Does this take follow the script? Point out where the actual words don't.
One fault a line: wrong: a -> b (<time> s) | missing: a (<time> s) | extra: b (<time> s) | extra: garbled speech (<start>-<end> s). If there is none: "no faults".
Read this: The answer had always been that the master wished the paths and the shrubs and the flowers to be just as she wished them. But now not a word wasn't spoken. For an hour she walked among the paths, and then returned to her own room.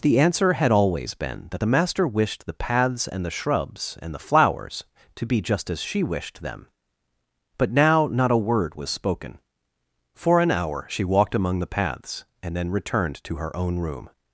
wrong: wasn't -> was (8.7 s)